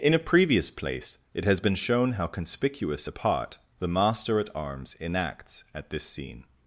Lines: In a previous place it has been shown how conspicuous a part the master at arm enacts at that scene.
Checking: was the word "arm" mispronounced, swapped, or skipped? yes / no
yes